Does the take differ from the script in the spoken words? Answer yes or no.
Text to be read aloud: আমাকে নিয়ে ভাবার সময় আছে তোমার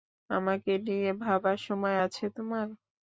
no